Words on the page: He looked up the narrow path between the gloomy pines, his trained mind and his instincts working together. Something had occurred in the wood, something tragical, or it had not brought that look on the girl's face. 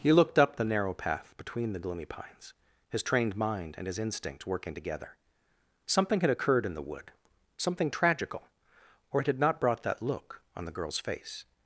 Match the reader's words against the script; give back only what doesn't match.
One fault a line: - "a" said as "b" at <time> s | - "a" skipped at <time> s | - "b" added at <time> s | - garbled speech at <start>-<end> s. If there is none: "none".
- "instincts" said as "instinct" at 4.0 s